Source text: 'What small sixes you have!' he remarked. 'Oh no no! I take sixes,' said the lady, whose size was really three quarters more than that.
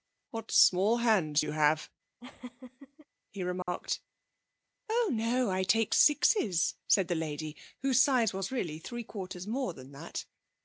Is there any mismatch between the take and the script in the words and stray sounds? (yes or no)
yes